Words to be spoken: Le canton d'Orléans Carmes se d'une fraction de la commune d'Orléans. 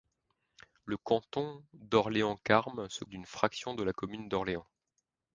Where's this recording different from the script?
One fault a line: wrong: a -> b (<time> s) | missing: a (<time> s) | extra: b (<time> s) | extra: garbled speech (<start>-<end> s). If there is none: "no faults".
no faults